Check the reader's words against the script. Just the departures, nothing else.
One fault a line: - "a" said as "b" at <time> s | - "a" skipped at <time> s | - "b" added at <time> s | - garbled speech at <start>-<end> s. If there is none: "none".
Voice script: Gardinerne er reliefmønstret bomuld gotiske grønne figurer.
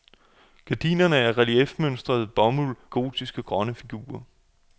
none